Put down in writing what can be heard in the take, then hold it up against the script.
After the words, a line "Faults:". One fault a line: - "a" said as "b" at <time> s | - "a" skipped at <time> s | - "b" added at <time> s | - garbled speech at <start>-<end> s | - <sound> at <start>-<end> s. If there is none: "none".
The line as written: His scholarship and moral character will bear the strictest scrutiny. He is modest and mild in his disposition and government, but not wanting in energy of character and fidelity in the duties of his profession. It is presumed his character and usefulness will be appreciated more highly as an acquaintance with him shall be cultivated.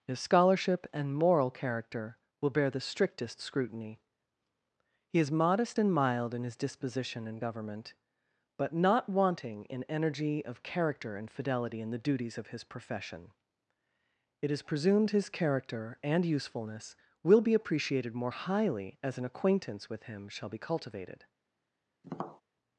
His scholarship and moral character will bear the strictest scrutiny. He is modest and mild in his disposition and government, but not wanting in energy of character and fidelity in the duties of his profession. It is presumed his character and usefulness will be appreciated more highly as an acquaintance with him shall be cultivated.
Faults:
- tap at 22.0-22.4 s